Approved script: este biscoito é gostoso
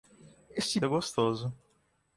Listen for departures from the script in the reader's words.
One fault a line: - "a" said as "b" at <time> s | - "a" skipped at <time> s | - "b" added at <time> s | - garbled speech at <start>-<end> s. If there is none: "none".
- "biscoito" skipped at 0.8 s